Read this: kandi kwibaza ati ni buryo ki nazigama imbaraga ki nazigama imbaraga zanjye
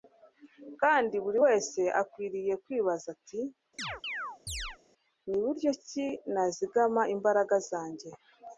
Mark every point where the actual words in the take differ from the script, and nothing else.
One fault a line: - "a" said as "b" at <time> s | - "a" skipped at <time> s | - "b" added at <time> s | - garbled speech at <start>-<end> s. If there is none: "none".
- "buri wese akwiriye" added at 1.2 s
- "ki nazigama imbaraga" skipped at 7.6 s